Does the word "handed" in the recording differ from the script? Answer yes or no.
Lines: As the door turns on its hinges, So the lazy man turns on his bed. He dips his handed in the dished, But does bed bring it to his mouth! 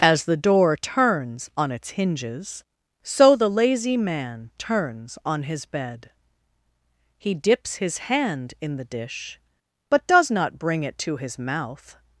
yes